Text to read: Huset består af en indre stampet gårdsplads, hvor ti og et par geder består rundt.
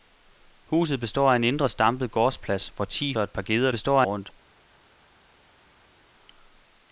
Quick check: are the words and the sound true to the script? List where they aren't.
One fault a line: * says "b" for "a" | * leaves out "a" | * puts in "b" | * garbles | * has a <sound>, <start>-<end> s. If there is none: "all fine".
all fine